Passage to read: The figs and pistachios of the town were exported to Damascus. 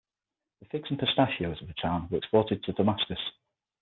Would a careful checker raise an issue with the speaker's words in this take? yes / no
no